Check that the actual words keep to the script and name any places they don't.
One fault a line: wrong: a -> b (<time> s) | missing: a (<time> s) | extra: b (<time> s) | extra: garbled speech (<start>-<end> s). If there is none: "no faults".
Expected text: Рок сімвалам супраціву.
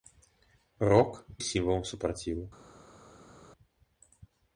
no faults